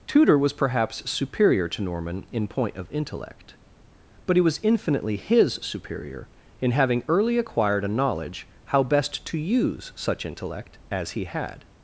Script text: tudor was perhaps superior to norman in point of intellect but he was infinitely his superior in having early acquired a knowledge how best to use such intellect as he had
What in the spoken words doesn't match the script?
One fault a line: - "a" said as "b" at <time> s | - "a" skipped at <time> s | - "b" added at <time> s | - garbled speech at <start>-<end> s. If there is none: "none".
none